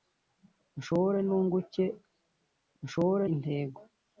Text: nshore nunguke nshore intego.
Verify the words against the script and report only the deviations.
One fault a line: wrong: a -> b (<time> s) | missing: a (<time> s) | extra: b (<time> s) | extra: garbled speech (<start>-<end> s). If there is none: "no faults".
no faults